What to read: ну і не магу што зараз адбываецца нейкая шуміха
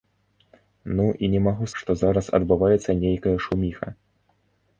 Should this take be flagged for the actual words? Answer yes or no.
no